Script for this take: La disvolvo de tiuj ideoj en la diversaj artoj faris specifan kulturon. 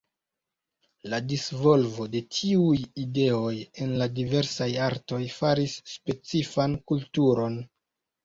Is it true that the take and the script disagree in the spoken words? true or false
false